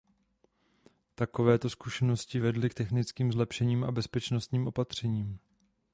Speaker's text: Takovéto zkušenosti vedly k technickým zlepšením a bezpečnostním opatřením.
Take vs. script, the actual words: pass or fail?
pass